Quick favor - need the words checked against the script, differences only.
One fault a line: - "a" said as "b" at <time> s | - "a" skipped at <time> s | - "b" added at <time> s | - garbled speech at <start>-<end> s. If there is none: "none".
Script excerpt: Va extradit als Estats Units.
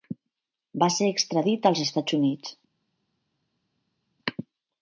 - "ser" added at 0.9 s